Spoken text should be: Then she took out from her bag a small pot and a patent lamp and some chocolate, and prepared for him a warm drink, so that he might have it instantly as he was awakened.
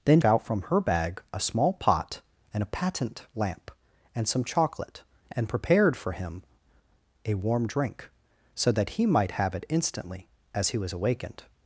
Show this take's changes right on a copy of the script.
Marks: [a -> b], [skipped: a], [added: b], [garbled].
Then [skipped: she took] out from her bag a small pot and a patent lamp and some chocolate, and prepared for him a warm drink, so that he might have it instantly as he was awakened.